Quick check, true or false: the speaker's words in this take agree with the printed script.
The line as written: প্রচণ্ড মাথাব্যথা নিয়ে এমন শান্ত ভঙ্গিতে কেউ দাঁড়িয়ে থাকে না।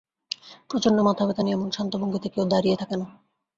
true